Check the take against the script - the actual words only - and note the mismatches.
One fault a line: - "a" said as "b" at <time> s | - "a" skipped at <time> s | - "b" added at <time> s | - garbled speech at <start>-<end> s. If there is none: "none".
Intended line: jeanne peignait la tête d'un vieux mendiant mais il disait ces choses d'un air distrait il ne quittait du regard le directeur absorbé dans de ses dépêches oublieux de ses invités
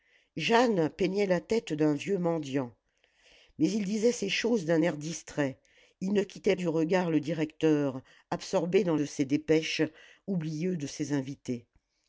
none